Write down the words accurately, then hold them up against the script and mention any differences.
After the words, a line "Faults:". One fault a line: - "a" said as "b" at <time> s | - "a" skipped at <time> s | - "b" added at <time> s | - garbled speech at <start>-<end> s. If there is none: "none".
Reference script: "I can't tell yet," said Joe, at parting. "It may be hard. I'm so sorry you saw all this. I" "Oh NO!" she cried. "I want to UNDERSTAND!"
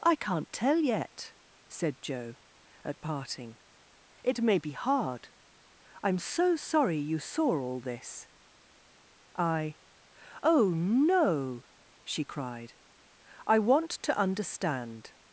"I can't tell yet," said Joe, at parting. "It may be hard. I'm so sorry you saw all this. I" "Oh NO!" she cried. "I want to UNDERSTAND!"
Faults:
none